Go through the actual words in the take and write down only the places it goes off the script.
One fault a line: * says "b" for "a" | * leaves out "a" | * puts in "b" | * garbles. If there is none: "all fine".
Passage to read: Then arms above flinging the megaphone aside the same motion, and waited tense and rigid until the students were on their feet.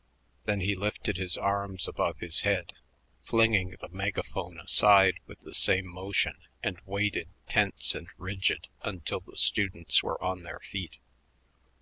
* puts in "he lifted his"
* puts in "his head"
* puts in "with"